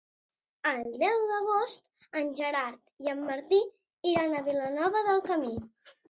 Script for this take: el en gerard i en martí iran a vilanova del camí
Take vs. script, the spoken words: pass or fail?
fail